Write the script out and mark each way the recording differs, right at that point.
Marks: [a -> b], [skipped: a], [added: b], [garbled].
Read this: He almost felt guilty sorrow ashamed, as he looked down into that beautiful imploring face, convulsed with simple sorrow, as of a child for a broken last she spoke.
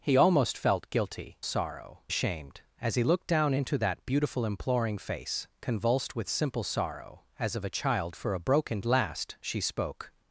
He almost felt guilty sorrow ashamed, as he looked down into that beautiful imploring face, convulsed with simple sorrow, as of a child for a broken last she spoke.